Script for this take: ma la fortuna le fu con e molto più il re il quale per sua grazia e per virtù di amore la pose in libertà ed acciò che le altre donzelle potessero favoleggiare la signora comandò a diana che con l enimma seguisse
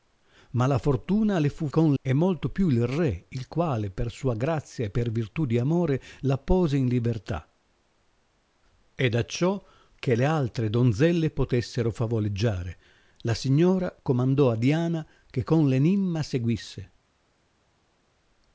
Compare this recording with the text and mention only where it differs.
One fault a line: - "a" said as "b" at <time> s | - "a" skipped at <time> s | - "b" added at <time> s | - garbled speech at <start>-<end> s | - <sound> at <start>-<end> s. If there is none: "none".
none